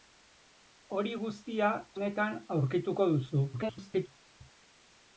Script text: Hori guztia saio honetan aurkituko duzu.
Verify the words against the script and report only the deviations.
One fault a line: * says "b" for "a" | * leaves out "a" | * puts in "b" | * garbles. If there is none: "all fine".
* leaves out "saio"
* garbles